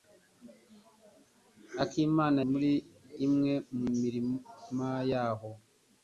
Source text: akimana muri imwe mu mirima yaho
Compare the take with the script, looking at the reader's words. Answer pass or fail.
pass